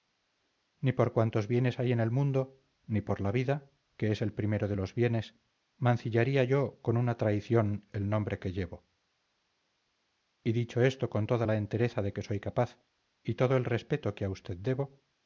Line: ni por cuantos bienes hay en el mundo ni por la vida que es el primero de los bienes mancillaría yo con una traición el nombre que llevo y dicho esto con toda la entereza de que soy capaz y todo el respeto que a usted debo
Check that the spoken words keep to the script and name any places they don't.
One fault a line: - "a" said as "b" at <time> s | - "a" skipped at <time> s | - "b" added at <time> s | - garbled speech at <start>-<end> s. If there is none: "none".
none